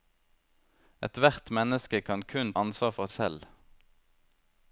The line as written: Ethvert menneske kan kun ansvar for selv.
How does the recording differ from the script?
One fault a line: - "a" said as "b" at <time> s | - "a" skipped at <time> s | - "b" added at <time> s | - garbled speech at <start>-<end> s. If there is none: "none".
none